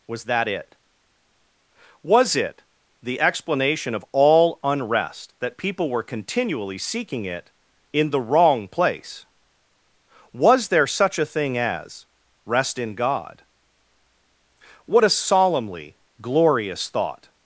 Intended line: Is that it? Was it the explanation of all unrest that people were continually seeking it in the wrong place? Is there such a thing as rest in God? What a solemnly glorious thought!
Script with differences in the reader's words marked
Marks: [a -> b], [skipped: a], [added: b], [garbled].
[Is -> Was] that it? Was it the explanation of all unrest that people were continually seeking it in the wrong place? [Is -> Was] there such a thing as rest in God? What a solemnly glorious thought!